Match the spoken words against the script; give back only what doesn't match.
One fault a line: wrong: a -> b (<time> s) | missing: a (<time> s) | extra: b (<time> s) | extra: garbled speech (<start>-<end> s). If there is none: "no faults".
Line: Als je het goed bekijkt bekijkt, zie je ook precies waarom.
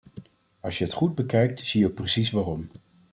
missing: bekijkt (1.6 s)